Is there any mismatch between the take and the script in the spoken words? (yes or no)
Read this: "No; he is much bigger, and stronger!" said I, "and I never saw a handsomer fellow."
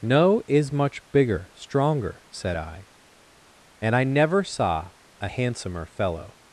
yes